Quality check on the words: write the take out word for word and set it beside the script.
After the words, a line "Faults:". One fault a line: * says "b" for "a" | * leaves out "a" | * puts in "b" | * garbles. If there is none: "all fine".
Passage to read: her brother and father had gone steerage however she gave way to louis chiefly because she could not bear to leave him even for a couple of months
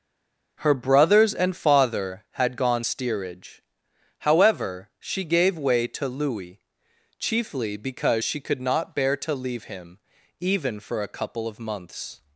her brothers and father had gone steerage however she gave way to louis chiefly because she could not bear to leave him even for a couple of months
Faults:
* says "brothers" for "brother"